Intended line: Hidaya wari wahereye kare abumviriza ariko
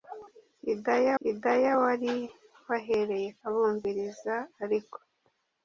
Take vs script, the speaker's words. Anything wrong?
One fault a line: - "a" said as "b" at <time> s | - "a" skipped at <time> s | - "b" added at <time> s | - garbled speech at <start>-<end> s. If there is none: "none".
- "hidaya" added at 1.2 s
- "kare" skipped at 3.3 s